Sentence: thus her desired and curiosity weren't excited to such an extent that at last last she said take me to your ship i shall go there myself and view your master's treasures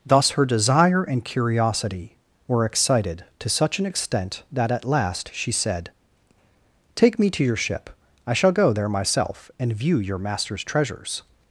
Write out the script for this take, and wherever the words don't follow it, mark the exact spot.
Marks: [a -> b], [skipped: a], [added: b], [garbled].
thus her [desired -> desire] and curiosity [weren't -> were] excited to such an extent that at last [skipped: last] she said take me to your ship i shall go there myself and view your master's treasures